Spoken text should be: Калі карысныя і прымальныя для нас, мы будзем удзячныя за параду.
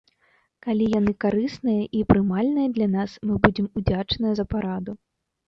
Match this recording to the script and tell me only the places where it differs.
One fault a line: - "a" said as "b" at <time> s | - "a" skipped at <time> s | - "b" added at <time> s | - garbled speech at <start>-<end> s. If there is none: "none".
- "яны" added at 1.0 s